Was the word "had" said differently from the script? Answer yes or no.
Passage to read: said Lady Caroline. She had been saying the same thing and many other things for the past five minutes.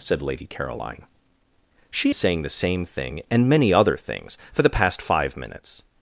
yes